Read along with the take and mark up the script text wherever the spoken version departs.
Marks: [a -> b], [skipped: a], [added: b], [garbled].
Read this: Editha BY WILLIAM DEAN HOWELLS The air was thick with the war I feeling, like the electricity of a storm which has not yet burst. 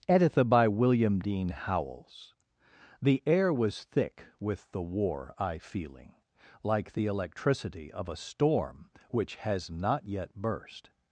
Editha BY WILLIAM DEAN HOWELLS The air was thick with the war I feeling, like the electricity of a storm which has not yet burst.